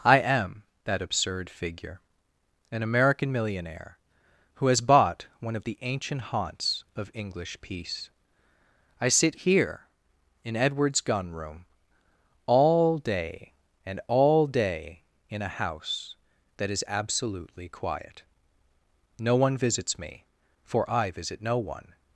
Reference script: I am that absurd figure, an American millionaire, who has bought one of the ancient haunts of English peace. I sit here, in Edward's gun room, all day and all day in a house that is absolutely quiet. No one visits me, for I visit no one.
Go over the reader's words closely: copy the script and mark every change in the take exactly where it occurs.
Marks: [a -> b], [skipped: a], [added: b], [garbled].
I am that absurd figure, an American millionaire, who has bought one of the ancient haunts of English peace. I sit here, in Edward's gun room, all day and all day in a house that is absolutely quiet. No one visits me, for I visit no one.